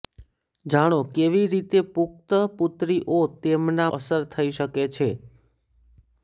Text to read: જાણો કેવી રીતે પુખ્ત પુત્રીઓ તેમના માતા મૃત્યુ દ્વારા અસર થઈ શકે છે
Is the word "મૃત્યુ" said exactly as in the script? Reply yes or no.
no